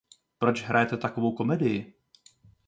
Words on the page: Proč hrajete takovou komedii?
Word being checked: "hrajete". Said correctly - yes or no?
yes